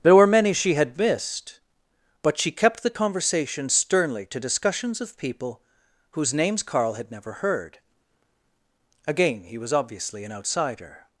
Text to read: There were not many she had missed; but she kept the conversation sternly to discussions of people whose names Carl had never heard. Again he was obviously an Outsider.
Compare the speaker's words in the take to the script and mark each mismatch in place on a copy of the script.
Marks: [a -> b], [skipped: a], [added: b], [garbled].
There were [skipped: not] many she had missed; but she kept the conversation sternly to discussions of people whose names Carl had never heard. Again he was obviously an Outsider.